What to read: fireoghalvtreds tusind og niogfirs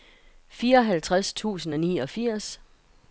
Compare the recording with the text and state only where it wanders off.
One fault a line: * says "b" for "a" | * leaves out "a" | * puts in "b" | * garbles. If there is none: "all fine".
all fine